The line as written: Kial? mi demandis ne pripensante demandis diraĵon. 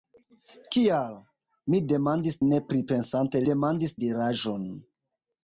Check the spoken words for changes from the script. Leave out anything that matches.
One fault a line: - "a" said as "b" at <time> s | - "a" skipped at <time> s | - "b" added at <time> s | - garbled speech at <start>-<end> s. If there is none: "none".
none